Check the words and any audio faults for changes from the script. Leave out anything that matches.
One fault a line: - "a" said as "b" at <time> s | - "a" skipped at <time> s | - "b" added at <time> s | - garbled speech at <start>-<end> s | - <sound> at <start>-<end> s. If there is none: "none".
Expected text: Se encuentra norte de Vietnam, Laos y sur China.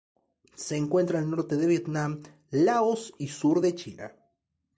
- "al" added at 1.2 s
- "de" added at 3.6 s